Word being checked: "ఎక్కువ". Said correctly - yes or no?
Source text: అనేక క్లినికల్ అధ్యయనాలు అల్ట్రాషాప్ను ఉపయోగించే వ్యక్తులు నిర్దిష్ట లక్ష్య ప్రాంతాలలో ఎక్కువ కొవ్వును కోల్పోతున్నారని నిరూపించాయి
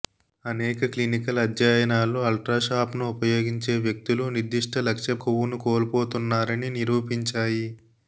no